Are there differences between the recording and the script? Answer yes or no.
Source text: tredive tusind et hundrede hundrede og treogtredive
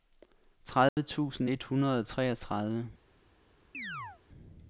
yes